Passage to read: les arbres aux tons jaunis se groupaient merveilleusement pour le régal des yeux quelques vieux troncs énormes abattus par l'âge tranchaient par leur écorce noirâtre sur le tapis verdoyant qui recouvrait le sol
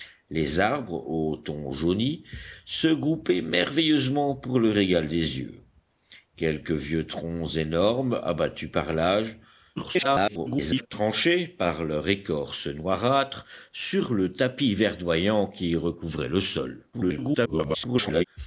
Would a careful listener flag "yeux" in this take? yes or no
no